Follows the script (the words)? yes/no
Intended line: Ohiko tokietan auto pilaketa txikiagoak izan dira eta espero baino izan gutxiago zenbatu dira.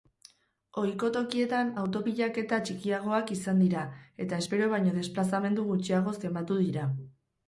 no